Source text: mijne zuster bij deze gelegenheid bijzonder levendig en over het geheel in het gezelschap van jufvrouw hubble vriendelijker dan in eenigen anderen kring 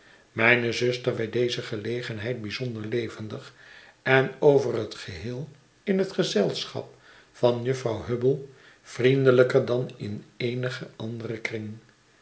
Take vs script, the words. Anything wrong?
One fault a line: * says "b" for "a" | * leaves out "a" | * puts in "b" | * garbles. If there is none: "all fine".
all fine